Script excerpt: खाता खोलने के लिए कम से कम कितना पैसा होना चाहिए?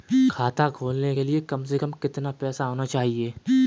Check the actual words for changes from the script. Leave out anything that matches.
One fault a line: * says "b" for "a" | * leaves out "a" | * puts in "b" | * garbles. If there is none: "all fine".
all fine